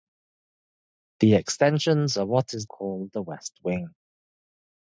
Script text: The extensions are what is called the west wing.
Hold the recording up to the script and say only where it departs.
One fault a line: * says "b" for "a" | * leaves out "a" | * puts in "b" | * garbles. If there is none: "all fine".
all fine